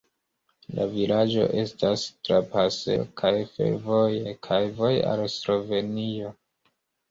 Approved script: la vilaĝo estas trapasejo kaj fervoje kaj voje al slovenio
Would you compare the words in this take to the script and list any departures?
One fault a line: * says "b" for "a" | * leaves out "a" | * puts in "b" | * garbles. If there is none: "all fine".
all fine